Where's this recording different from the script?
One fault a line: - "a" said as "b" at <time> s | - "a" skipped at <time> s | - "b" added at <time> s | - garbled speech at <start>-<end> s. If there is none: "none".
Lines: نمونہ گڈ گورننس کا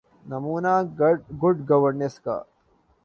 none